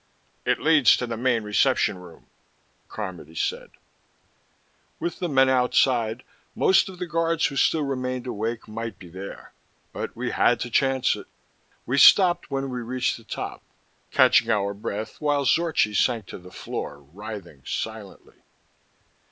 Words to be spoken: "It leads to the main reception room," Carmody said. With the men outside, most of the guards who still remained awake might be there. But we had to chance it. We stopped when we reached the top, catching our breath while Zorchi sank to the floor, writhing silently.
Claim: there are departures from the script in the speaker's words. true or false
false